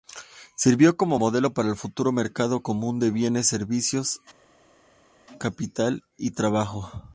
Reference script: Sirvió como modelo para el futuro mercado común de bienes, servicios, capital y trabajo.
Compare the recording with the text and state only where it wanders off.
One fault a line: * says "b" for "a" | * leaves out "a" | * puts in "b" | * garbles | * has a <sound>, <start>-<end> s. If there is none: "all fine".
all fine